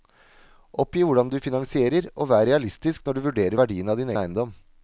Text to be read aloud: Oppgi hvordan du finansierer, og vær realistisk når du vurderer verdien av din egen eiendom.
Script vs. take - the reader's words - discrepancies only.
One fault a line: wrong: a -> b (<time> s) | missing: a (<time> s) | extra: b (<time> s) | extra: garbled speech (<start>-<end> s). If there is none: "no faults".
missing: egen (4.1 s)